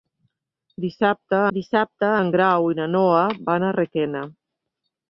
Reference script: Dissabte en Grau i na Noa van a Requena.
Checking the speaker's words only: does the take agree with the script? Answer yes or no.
no